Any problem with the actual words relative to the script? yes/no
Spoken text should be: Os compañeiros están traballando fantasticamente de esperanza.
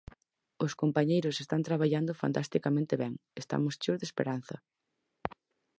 yes